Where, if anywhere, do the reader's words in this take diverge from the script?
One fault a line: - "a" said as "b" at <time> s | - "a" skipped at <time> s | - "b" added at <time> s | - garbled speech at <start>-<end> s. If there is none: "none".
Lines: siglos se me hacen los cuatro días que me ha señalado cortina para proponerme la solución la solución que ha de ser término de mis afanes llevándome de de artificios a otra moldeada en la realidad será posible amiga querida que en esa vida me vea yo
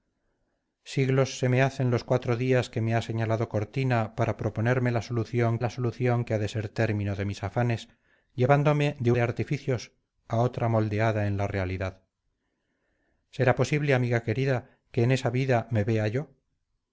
none